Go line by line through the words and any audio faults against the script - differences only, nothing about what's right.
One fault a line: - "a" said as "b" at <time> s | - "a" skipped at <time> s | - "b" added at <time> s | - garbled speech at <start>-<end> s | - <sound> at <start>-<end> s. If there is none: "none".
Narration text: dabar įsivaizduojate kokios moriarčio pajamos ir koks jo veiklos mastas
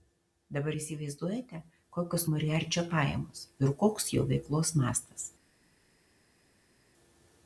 none